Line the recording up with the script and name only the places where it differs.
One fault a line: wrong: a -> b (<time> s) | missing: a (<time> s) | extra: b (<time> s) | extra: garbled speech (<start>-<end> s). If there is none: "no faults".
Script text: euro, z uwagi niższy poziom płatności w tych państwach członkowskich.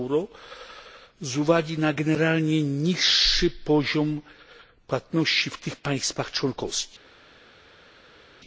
extra: na generalnie (1.8 s)